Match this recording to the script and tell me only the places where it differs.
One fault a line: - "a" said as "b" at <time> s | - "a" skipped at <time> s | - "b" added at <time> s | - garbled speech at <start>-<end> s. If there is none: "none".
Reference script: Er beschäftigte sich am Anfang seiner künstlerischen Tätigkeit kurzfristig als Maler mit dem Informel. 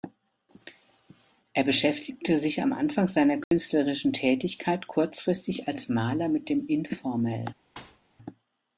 none